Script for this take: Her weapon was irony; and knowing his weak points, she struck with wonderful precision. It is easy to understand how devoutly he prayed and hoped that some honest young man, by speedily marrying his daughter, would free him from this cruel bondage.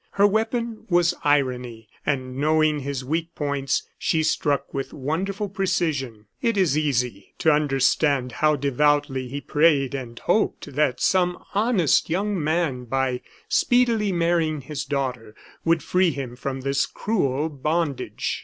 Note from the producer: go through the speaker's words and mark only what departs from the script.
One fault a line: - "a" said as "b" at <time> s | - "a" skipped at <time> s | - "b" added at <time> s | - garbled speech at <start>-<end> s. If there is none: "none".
none